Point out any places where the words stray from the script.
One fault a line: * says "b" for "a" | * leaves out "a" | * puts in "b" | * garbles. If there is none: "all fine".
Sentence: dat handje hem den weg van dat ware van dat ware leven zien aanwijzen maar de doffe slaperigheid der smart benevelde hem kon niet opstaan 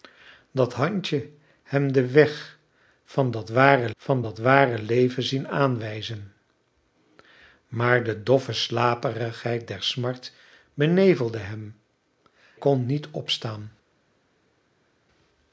all fine